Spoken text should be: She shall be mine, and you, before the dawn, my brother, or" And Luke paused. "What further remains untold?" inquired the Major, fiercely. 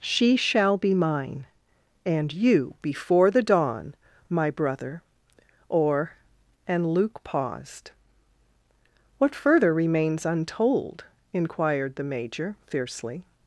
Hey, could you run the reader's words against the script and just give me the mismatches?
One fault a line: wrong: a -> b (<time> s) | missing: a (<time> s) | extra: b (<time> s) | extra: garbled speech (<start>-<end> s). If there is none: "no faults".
no faults